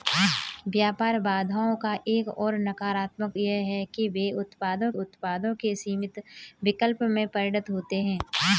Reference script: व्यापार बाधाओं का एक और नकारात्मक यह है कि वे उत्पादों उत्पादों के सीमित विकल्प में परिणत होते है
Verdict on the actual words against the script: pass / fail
pass